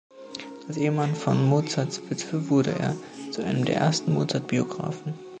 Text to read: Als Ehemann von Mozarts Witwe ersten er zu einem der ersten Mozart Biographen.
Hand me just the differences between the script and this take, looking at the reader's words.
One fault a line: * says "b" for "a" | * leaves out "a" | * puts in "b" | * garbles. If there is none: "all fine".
* says "wurde" for "ersten"